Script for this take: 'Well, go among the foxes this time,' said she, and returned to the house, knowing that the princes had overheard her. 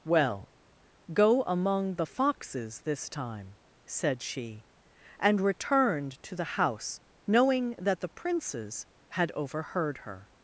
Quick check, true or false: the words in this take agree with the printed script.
true